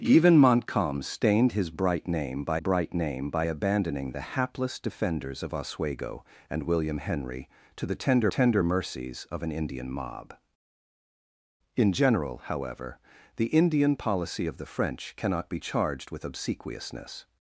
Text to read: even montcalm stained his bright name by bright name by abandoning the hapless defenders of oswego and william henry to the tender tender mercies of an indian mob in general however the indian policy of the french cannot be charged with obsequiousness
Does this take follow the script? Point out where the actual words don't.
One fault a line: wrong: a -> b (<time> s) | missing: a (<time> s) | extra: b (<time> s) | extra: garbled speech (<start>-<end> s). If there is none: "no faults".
no faults